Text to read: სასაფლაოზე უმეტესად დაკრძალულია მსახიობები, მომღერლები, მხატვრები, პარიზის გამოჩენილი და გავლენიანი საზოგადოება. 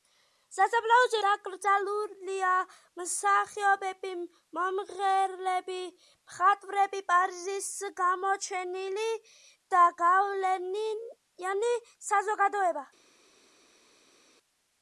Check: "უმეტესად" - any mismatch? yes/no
yes